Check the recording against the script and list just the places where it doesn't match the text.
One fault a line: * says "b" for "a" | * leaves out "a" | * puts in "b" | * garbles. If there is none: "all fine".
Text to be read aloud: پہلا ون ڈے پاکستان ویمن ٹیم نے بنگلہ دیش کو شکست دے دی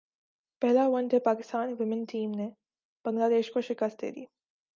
all fine